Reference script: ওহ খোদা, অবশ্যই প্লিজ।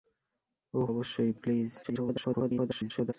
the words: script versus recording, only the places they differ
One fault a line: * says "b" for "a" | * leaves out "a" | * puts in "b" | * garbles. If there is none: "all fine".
* leaves out "খোদা"
* garbles